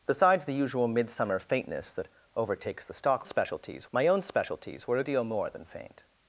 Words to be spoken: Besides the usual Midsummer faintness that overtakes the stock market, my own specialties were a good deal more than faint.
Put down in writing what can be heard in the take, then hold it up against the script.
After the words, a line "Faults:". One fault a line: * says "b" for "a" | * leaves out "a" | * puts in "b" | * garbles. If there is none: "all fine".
Besides the usual Midsummer faintness that overtakes the stock specialties, my own specialties were a deal more than faint.
Faults:
* says "specialties" for "market"
* leaves out "good"